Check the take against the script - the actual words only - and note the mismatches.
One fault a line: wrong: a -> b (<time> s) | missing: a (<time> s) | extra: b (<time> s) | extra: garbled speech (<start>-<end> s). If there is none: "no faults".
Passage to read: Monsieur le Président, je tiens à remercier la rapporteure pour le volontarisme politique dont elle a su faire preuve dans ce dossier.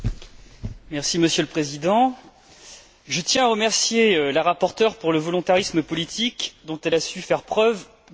no faults